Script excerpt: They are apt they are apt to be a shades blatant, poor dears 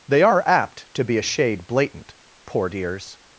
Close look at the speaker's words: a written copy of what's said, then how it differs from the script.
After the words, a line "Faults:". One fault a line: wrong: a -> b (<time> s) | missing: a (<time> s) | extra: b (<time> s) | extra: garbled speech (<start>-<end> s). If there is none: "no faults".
They are apt to be a shade blatant, poor dears
Faults:
missing: they are apt (0.9 s)
wrong: shades -> shade (1.2 s)